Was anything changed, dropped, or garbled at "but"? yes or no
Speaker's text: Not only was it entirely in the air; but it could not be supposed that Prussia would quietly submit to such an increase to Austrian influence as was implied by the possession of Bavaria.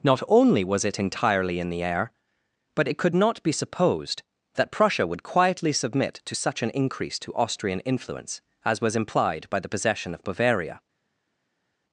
no